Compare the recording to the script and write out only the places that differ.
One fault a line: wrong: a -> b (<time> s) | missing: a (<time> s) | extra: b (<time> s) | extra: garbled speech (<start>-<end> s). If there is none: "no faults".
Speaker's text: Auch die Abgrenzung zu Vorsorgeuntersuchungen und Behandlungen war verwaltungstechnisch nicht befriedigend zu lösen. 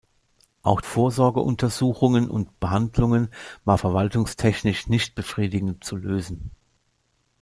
missing: die Abgrenzung zu (0.8 s)